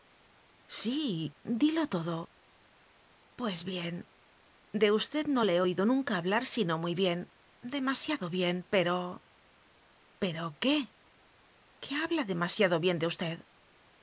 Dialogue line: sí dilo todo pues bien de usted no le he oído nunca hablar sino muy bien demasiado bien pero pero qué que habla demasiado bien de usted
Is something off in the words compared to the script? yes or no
no